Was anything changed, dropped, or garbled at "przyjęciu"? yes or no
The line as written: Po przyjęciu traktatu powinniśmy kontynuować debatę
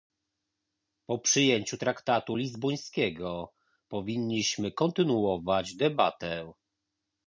no